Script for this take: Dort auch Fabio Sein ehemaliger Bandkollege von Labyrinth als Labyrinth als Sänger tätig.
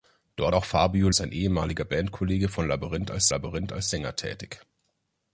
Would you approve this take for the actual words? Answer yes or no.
yes